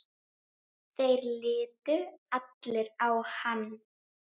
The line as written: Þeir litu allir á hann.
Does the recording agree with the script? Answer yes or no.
yes